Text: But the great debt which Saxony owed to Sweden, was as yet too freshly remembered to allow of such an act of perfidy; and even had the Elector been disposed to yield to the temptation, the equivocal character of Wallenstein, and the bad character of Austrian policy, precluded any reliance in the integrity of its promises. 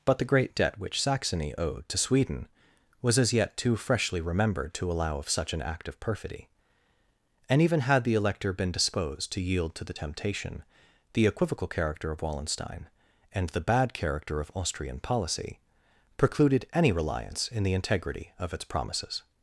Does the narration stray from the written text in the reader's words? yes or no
no